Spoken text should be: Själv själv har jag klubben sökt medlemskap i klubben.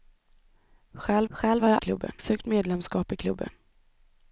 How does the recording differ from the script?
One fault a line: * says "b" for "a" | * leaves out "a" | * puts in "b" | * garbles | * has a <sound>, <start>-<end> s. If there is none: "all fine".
all fine